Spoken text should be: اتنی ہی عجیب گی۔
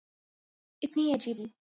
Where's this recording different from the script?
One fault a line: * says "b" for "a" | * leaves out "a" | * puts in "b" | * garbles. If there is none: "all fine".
all fine